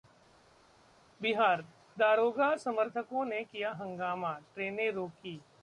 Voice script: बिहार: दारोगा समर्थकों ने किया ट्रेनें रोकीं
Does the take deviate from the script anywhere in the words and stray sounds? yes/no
yes